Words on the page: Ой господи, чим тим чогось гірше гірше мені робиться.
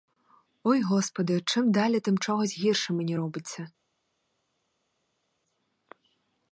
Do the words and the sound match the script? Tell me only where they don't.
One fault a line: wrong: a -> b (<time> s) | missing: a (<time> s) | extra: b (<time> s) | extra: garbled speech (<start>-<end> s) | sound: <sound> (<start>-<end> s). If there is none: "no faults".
extra: далі (1.7 s)
missing: гірше (2.9 s)